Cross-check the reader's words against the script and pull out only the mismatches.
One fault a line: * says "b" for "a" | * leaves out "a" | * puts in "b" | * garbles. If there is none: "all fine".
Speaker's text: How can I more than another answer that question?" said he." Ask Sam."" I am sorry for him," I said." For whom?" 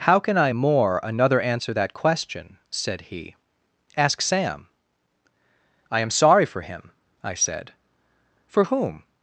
* leaves out "than"